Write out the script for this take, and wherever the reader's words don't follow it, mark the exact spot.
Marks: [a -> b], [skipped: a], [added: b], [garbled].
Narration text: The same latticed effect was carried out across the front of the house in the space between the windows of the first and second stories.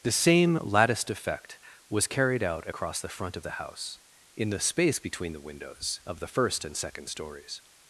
The same latticed effect was carried out across the front of the house in the space between the windows of the first and second stories.